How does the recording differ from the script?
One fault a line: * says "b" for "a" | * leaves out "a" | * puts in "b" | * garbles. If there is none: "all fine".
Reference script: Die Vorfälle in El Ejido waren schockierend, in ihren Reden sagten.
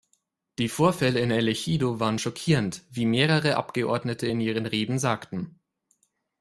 * puts in "wie mehrere Abgeordnete"